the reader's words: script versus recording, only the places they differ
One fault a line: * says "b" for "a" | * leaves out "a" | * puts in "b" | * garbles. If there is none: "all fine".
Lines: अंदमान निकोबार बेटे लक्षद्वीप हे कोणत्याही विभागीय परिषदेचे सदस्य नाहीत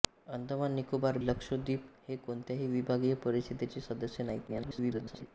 * leaves out "बेटे"
* garbles